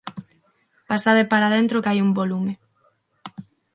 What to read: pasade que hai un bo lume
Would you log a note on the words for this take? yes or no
yes